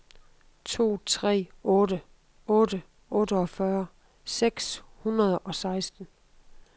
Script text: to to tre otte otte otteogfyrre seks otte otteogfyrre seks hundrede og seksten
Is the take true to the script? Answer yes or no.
no